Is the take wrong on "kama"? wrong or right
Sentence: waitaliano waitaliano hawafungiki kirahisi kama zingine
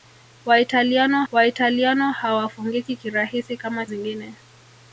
right